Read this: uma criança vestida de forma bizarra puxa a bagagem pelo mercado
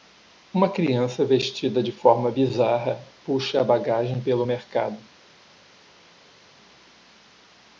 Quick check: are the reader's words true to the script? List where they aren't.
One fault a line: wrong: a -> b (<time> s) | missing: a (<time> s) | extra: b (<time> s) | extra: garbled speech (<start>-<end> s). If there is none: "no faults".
no faults